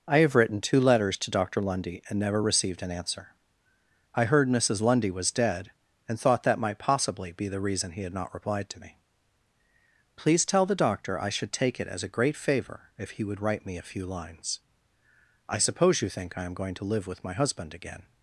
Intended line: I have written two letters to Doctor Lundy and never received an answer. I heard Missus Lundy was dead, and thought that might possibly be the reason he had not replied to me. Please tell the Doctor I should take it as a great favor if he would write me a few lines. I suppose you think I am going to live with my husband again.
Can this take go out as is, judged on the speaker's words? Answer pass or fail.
pass